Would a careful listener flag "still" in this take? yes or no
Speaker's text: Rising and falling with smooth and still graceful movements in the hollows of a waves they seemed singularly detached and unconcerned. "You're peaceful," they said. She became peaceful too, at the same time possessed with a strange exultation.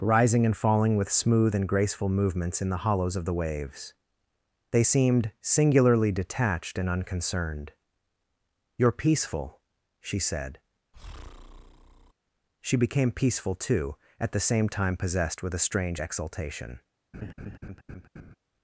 yes